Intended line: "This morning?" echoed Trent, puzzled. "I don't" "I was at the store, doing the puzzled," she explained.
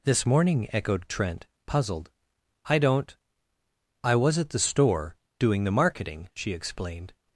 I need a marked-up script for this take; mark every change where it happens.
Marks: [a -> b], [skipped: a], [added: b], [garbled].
"This morning?" echoed Trent, puzzled. "I don't" "I was at the store, doing the [puzzled," -> marketing] she explained.